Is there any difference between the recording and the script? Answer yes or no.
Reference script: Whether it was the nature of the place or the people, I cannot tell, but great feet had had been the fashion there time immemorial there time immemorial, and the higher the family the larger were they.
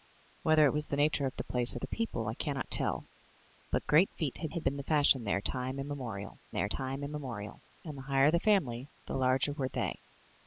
no